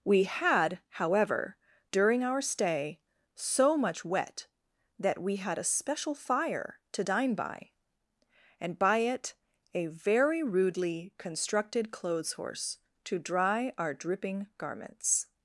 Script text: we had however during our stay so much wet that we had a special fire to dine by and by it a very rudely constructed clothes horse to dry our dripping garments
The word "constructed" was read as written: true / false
true